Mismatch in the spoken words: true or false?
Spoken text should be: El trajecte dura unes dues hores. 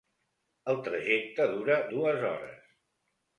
true